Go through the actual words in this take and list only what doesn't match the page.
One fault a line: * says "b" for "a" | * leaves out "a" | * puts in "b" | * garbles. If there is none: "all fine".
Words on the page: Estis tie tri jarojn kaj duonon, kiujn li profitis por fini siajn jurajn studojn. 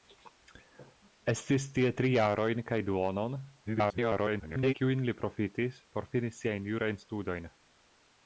* garbles